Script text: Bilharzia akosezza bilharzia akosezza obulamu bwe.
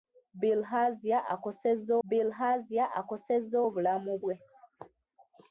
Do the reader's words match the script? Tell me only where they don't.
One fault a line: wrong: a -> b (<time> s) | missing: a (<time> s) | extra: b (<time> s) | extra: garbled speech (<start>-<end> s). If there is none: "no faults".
no faults